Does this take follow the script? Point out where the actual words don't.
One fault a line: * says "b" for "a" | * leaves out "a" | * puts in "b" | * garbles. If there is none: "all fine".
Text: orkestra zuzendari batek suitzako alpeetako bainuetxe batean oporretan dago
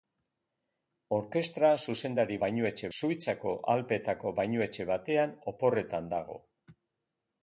* says "bainuetxe" for "batek"